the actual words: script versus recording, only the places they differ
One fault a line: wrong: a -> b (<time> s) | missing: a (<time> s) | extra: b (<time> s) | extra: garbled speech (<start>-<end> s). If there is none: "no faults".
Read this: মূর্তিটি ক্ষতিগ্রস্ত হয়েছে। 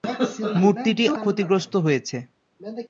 no faults